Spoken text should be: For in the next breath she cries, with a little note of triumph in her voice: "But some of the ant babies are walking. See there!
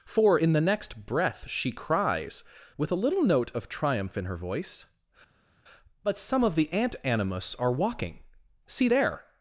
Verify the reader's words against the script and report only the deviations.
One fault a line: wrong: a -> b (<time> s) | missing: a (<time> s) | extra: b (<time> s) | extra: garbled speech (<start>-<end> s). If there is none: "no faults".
wrong: babies -> animus (7.0 s)